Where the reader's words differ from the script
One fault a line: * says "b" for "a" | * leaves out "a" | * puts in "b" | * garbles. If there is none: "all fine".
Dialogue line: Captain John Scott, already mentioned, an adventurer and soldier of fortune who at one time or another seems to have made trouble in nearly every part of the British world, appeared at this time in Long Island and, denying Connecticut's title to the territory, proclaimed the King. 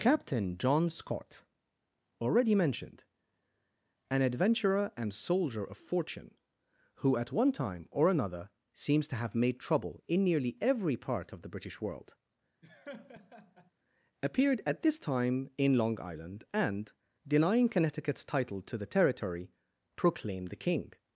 all fine